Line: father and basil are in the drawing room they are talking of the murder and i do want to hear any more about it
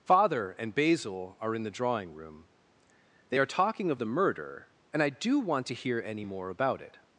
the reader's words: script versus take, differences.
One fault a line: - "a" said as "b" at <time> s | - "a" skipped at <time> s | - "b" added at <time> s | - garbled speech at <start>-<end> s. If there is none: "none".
none